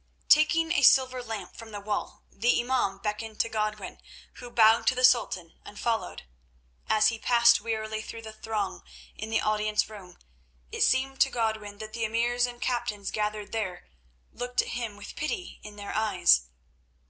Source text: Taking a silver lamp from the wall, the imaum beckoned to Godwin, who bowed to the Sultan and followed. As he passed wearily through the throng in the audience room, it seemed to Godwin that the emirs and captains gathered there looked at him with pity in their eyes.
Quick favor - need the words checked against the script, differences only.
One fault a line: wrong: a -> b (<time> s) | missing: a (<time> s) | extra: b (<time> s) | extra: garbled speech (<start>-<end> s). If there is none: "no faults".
no faults